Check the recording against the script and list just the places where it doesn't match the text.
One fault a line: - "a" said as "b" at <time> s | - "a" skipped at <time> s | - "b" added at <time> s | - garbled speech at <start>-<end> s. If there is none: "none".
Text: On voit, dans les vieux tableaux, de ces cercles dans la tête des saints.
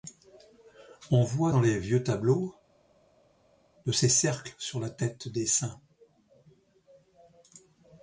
- "dans" said as "sur" at 4.6 s